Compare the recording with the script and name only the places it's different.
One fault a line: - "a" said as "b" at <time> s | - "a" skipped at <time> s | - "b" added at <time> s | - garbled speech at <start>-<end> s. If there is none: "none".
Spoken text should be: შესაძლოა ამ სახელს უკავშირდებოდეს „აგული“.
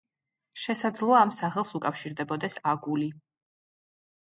none